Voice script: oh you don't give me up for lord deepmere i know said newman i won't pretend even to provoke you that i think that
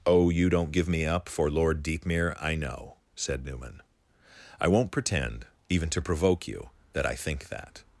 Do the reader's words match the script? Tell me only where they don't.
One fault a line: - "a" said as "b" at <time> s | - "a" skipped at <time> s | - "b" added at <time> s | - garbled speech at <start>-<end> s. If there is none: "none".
none